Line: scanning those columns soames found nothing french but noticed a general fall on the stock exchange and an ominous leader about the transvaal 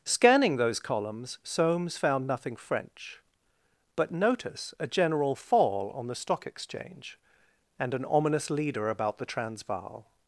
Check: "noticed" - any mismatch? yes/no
yes